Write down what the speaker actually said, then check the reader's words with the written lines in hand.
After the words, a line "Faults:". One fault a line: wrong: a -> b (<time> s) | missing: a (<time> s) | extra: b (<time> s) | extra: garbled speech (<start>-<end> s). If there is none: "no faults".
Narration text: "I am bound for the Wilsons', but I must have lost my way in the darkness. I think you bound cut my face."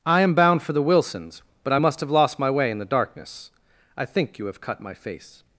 "I am bound for the Wilsons', but I must have lost my way in the darkness. I think you have cut my face."
Faults:
wrong: bound -> have (4.5 s)